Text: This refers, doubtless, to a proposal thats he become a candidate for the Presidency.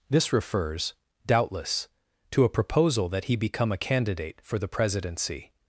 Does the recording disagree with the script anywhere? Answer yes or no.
yes